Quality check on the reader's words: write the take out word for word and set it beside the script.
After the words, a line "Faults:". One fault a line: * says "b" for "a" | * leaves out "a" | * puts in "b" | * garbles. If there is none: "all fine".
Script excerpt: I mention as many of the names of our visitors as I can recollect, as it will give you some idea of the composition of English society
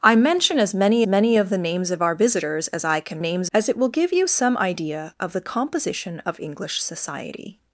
I mention as many many of the names of our visitors as I can names, as it will give you some idea of the composition of English society
Faults:
* puts in "many"
* says "names" for "recollect"